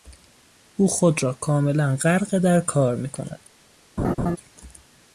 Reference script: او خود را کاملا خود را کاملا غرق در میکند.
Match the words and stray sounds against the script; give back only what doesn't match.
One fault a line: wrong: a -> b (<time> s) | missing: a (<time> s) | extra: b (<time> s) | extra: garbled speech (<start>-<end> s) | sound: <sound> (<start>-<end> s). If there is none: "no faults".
missing: خود را کاملا (1.9 s)
extra: کار (2.6 s)
sound: laugh (4.0-4.4 s)